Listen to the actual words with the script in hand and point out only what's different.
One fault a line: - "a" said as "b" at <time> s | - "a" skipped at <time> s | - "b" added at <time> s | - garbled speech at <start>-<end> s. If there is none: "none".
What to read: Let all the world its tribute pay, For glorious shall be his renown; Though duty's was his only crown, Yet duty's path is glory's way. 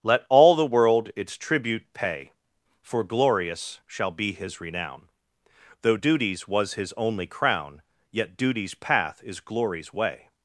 none